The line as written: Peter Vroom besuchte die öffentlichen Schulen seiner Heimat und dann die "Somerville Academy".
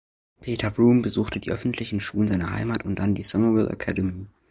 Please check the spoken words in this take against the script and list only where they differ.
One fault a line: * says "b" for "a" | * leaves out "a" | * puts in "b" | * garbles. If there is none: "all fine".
all fine